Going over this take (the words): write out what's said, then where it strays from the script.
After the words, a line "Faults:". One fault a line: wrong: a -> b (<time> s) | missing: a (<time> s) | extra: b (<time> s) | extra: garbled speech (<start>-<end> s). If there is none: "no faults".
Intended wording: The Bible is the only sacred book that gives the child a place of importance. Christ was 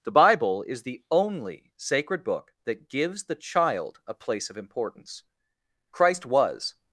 The Bible is the only sacred book that gives the child a place of importance. Christ was
Faults:
no faults